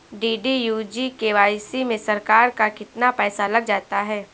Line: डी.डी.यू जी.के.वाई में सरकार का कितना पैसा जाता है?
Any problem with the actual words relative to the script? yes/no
yes